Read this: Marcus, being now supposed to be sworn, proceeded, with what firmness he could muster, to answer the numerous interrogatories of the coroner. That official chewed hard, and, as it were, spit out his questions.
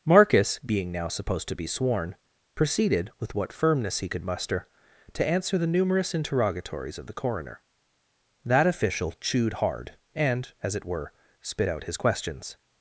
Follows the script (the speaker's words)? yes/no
yes